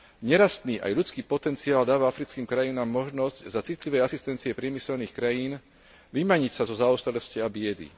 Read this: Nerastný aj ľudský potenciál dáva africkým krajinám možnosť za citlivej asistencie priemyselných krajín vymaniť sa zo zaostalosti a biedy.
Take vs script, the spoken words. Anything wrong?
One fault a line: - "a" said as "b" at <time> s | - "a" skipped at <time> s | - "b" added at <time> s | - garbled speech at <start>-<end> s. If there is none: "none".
none